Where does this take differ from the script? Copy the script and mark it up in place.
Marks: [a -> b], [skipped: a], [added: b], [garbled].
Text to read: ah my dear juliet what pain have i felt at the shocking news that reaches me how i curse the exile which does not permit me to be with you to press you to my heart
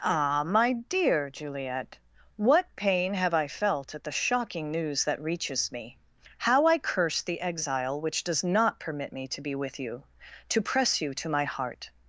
ah my dear juliet what pain have i felt at the shocking news that reaches me how i curse the exile which does not permit me to be with you to press you to my heart